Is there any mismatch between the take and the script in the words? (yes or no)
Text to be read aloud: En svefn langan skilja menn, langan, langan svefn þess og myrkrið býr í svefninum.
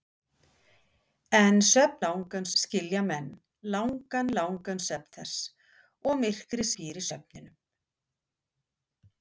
no